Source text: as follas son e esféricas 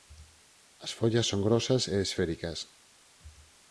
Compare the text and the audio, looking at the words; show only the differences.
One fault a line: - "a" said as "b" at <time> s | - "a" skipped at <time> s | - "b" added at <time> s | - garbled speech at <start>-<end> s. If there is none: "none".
- "grosas" added at 1.5 s